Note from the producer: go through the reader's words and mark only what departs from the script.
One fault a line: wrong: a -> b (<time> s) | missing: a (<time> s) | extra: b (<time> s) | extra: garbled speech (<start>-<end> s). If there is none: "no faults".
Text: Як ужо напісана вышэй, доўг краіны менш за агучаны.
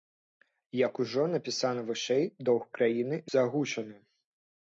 missing: менш (3.2 s)